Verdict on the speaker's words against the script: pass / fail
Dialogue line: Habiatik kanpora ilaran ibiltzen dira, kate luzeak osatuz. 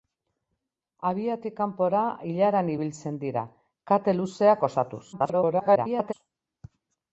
fail